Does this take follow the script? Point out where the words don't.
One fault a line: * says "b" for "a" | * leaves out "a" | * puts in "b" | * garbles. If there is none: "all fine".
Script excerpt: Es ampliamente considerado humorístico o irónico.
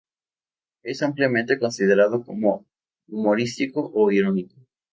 * puts in "como"